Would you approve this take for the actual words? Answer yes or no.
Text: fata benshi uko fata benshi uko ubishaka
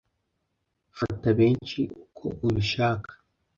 no